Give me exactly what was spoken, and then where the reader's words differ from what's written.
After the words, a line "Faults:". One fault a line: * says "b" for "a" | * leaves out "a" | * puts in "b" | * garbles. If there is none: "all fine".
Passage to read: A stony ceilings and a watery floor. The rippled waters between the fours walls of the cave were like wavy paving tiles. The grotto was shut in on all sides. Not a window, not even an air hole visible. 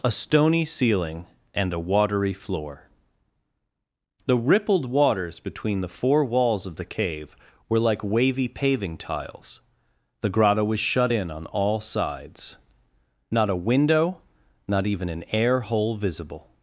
A stony ceiling and a watery floor. The rippled waters between the four walls of the cave were like wavy paving tiles. The grotto was shut in on all sides. Not a window, not even an air hole visible.
Faults:
* says "ceiling" for "ceilings"
* says "four" for "fours"